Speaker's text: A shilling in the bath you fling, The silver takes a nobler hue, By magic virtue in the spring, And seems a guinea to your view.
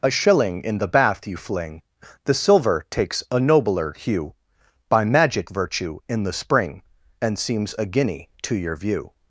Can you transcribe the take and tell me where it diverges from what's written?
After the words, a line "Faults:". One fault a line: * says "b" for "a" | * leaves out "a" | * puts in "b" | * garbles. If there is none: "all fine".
A shilling in the bath you fling, The silver takes a nobler hue, By magic virtue in the spring, And seems a guinea to your view.
Faults:
all fine